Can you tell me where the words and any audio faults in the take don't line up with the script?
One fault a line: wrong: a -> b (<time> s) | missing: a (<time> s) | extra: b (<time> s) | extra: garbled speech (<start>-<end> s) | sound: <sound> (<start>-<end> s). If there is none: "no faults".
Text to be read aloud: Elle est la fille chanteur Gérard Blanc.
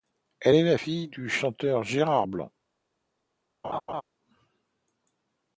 extra: du (1.1 s)
sound: laugh (3.6-4.0 s)